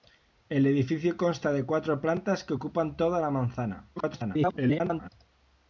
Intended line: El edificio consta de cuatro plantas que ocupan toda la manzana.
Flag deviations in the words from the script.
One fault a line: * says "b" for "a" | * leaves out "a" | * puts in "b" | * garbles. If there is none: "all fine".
* garbles